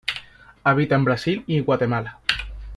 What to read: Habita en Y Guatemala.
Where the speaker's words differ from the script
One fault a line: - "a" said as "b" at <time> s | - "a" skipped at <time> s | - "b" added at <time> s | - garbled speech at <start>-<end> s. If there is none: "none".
- "Brasil" added at 1.1 s